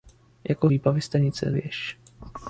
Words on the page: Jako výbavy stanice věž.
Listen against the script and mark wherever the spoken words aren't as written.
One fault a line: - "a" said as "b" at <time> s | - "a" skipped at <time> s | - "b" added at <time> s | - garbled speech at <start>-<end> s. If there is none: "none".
none